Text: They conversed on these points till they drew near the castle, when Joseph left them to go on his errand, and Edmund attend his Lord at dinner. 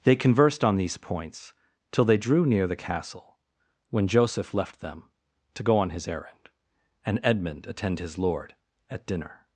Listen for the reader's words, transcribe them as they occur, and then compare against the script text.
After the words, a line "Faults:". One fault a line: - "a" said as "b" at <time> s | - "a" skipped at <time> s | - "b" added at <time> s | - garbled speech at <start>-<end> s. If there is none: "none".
They conversed on these points till they drew near the castle, when Joseph left them to go on his errand, and Edmund attend his Lord at dinner.
Faults:
none